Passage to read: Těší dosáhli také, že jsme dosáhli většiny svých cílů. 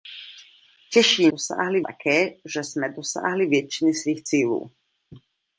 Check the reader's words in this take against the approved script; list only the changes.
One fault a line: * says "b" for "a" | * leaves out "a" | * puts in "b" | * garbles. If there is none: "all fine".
all fine